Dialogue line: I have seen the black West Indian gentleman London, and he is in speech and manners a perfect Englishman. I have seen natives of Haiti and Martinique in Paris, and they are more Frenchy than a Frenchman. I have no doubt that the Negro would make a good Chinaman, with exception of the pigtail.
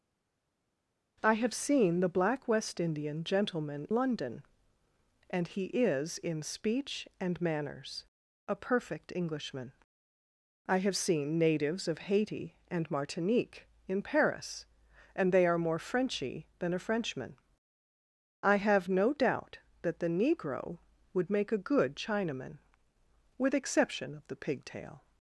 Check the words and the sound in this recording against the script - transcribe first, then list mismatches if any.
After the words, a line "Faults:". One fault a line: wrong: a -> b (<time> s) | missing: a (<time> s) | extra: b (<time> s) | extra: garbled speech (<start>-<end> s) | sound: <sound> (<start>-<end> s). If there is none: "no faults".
I have seen the black West Indian gentleman London, and he is in speech and manners a perfect Englishman. I have seen natives of Haiti and Martinique in Paris, and they are more Frenchy than a Frenchman. I have no doubt that the Negro would make a good Chinaman, with exception of the pigtail.
Faults:
no faults